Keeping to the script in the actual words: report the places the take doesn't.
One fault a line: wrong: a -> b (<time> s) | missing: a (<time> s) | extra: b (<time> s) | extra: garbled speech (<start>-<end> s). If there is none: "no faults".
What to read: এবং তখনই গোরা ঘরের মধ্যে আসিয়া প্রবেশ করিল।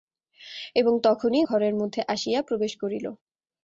missing: গোরা (1.4 s)